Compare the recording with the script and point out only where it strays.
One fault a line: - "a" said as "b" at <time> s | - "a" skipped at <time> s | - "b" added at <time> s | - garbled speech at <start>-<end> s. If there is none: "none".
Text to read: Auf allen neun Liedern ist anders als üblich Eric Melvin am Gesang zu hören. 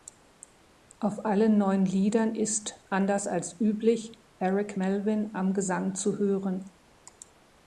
none